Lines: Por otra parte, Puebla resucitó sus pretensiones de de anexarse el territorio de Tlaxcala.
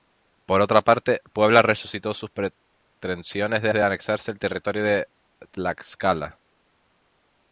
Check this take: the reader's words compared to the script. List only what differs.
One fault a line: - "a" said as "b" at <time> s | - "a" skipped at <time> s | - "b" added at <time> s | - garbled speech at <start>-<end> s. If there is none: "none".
none